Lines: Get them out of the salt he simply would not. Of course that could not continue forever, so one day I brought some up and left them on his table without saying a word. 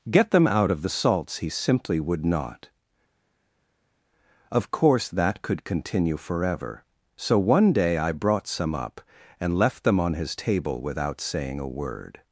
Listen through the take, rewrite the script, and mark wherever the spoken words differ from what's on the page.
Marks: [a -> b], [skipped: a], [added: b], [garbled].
Get them out of the [salt -> salts] he simply would not. Of course that could [skipped: not] continue forever, so one day I brought some up and left them on his table without saying a word.